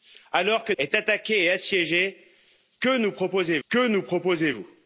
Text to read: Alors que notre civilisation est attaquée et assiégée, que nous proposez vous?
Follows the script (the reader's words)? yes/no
no